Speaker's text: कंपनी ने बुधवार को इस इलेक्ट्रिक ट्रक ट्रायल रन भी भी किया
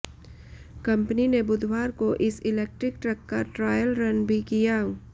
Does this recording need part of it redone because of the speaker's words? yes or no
yes